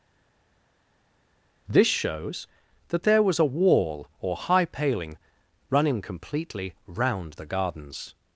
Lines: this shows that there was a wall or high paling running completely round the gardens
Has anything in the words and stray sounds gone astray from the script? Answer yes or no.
no